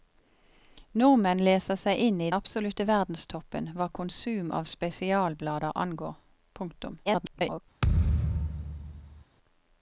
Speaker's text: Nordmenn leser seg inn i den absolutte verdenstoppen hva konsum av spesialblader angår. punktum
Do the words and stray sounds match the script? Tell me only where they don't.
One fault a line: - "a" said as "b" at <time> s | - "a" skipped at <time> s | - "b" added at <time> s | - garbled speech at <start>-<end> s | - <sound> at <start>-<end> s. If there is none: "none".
- "den" skipped at 2.3 s
- garbled speech at 7.0-7.6 s
- thud at 7.8-9.2 s